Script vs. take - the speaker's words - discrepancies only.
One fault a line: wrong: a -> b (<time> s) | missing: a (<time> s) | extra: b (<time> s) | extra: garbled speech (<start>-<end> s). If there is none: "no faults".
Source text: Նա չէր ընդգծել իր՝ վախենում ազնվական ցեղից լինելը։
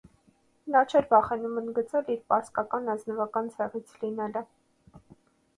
extra: վախենում (1.1 s)
wrong: վախենում -> պարսկական (2.3 s)